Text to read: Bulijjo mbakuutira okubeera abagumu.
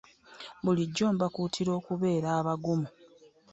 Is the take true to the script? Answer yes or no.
yes